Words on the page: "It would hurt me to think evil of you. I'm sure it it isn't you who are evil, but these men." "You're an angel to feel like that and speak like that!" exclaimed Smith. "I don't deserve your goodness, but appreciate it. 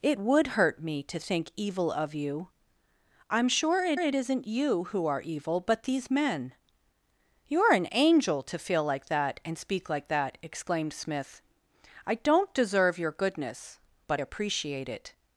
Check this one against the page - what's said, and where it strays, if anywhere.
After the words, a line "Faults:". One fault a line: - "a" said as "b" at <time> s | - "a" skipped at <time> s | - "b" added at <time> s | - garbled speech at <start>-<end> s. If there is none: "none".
"It would hurt me to think evil of you. I'm sure it it isn't you who are evil, but these men." "You're an angel to feel like that and speak like that!" exclaimed Smith. "I don't deserve your goodness, but appreciate it.
Faults:
none